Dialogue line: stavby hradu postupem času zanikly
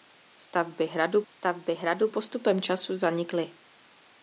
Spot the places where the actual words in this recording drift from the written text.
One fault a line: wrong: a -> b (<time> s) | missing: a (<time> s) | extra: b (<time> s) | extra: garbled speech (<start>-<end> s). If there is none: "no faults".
extra: stavby hradu (1.3 s)